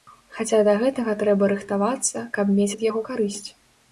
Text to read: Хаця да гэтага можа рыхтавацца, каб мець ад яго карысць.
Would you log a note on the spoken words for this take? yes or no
yes